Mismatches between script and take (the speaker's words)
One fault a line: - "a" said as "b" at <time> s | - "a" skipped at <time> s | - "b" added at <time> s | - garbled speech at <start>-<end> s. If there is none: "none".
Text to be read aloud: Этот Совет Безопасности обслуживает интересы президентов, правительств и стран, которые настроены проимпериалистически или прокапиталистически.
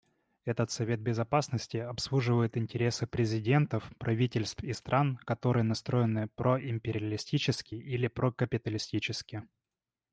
none